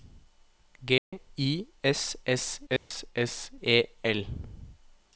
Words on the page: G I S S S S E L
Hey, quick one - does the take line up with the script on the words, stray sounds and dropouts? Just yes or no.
no